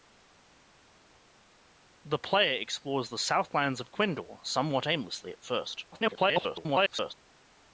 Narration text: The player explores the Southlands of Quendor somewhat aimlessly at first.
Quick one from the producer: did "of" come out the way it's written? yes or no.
yes